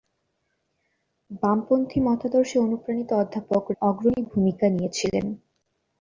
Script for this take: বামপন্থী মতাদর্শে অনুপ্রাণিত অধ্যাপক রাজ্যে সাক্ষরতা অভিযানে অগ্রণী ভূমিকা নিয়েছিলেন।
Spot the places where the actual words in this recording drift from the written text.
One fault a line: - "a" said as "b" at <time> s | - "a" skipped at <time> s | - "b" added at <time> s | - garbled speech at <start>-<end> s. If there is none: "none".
- "রাজ্যে সাক্ষরতা অভিযানে" skipped at 3.6 s